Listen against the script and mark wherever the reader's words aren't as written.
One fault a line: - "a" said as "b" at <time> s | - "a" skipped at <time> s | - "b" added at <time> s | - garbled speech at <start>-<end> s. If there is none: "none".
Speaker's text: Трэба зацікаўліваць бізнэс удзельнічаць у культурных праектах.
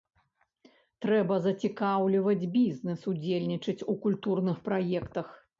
none